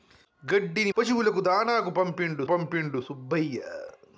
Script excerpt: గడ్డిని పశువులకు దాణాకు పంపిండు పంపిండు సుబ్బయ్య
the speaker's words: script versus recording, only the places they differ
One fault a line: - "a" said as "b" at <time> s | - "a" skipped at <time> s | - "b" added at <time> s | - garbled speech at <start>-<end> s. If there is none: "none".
none